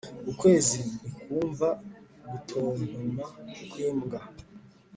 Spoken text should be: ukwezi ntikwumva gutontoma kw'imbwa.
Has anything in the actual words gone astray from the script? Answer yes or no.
no